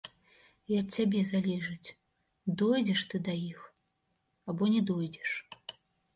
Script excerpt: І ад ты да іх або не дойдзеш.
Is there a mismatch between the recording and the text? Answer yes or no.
yes